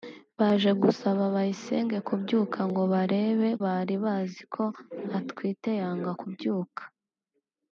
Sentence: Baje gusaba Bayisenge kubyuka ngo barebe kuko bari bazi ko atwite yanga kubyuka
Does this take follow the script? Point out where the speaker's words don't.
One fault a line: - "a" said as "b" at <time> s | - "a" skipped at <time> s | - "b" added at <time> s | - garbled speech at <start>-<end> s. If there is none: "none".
- "kuko" skipped at 3.5 s